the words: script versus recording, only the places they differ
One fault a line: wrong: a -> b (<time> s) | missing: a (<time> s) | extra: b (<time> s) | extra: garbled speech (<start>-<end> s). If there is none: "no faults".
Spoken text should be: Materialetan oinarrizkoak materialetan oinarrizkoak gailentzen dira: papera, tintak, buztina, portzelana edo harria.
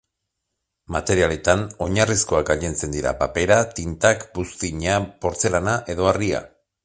missing: materialetan oinarrizkoak (2.5 s)